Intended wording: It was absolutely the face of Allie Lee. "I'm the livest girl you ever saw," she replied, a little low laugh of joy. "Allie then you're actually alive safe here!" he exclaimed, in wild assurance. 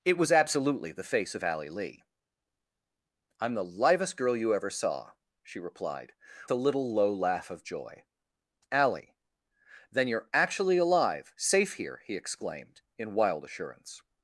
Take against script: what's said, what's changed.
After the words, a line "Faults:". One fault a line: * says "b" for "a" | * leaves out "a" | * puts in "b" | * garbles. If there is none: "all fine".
It was absolutely the face of Allie Lee. "I'm the livest girl you ever saw," she replied, a little low laugh of joy. "Allie then you're actually alive safe here!" he exclaimed, in wild assurance.
Faults:
all fine